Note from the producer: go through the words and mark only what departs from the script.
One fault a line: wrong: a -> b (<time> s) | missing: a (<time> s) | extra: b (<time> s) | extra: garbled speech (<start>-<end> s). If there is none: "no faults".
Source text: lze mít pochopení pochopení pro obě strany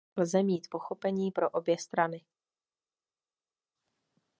missing: pochopení (1.3 s)